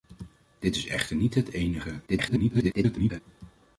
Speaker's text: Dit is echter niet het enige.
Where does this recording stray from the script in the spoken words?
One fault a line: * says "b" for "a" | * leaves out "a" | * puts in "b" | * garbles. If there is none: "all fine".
* garbles